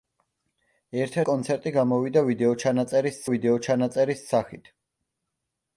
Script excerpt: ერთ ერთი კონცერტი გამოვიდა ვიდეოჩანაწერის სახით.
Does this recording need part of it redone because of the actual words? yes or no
yes